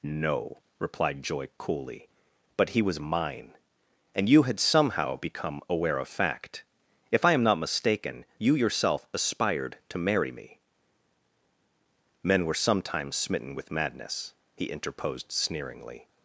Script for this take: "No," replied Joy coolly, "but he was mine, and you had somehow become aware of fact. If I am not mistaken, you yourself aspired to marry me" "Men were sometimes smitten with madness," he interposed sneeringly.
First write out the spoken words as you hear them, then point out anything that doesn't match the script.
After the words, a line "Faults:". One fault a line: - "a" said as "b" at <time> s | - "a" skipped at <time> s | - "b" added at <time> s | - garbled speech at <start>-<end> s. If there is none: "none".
"No," replied Joy coolly, "but he was mine, and you had somehow become aware of fact. If I am not mistaken, you yourself aspired to marry me" "Men were sometimes smitten with madness," he interposed sneeringly.
Faults:
none